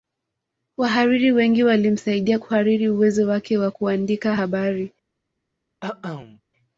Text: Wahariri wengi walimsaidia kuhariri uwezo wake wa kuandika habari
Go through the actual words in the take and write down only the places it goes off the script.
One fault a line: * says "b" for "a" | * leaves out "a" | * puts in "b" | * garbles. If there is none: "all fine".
all fine